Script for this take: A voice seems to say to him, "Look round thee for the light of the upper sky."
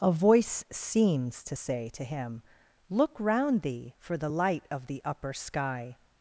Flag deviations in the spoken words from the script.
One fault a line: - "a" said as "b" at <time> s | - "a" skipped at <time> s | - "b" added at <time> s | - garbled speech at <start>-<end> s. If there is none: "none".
none